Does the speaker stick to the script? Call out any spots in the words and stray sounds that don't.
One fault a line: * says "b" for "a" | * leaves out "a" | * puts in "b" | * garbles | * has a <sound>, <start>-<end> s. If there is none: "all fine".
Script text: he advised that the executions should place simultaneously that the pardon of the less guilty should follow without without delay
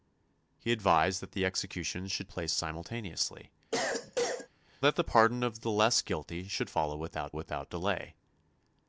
* has a cough, 3.7-4.5 s